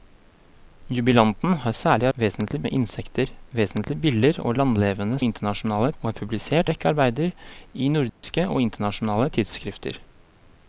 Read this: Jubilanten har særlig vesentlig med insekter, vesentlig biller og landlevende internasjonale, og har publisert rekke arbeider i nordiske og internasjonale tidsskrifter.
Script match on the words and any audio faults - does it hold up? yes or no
no